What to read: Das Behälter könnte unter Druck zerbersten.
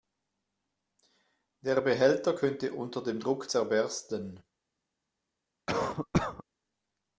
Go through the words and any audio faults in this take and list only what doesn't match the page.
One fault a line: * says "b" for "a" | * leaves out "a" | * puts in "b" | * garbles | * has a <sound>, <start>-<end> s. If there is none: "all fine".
* says "Der" for "Das"
* puts in "dem"
* has a cough, 5.7-6.4 s